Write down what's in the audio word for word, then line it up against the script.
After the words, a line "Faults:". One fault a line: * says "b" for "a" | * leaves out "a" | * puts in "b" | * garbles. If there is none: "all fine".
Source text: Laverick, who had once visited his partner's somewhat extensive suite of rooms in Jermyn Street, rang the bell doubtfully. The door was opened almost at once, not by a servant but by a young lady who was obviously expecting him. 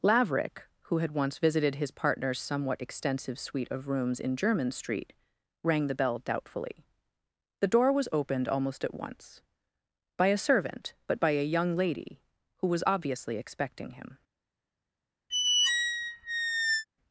Laverick, who had once visited his partner's somewhat extensive suite of rooms in Jermyn Street, rang the bell doubtfully. The door was opened almost at once, by a servant but by a young lady who was obviously expecting him.
Faults:
* leaves out "not"